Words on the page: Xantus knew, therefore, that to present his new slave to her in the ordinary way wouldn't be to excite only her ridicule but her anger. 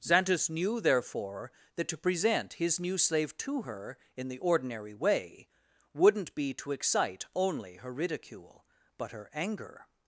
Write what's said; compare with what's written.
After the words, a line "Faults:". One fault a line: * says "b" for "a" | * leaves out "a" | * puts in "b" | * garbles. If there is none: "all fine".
Xantus knew, therefore, that to present his new slave to her in the ordinary way wouldn't be to excite only her ridicule but her anger.
Faults:
all fine